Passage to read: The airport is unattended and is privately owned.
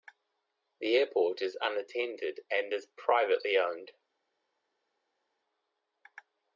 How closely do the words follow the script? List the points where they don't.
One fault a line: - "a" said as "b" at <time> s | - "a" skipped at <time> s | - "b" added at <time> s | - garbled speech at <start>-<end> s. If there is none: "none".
none